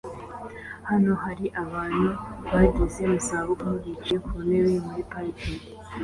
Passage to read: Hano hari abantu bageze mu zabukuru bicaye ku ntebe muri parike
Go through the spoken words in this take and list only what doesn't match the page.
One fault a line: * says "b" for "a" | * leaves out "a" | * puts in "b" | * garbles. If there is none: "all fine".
all fine